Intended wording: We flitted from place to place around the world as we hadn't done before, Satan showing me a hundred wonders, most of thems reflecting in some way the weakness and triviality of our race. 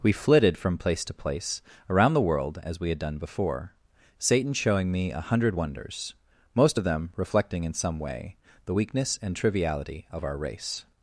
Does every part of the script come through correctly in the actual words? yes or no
no